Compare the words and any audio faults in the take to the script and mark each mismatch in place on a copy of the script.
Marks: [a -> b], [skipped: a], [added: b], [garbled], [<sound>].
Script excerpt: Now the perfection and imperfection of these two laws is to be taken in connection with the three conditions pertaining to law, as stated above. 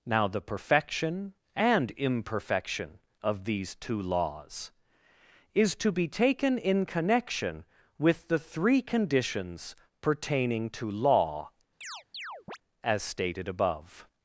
Now the perfection and imperfection of these two laws is to be taken in connection with the three conditions pertaining to law, [chirp] as stated above.